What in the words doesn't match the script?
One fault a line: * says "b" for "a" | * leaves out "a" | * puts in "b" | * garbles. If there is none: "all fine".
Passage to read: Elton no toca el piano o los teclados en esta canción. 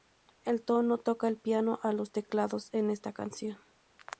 all fine